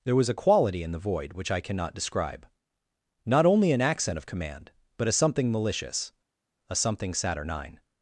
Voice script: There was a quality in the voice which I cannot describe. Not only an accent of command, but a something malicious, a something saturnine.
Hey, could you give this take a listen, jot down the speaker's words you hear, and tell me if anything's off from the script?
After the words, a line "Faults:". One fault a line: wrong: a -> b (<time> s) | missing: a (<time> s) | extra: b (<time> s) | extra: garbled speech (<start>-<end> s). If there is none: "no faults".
There was a quality in the void which I cannot describe. Not only an accent of command, but a something malicious, a something saturnine.
Faults:
wrong: voice -> void (1.0 s)